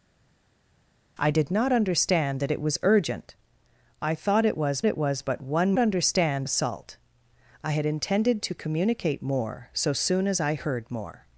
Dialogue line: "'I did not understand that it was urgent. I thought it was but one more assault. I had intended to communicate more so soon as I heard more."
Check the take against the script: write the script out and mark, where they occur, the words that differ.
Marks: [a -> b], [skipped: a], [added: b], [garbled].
"'I did not understand that it was urgent. I thought it was [added: it was] but one [more -> understand] assault. I had intended to communicate more so soon as I heard more."